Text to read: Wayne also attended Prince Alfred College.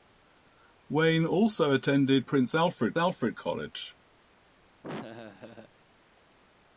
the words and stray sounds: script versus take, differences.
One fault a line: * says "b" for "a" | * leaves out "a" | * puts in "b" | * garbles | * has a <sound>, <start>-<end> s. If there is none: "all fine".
* puts in "Alfred"
* has a laugh, 4.8-5.7 s